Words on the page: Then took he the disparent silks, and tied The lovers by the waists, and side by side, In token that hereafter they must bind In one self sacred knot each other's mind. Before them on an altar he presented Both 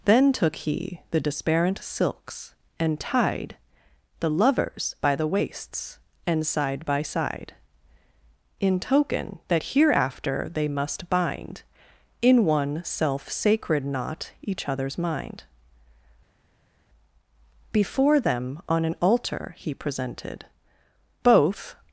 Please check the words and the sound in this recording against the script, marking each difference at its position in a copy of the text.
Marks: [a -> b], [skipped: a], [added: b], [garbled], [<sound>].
Then took he the disparent silks, and tied The lovers by the waists, and side by side, In token that hereafter they must bind In one self sacred knot each other's mind. Before them on an altar he presented Both